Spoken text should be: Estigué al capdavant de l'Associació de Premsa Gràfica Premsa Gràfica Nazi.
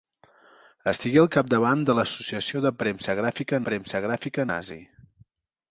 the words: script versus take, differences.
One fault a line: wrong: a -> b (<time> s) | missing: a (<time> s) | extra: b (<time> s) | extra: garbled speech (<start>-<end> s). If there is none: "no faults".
no faults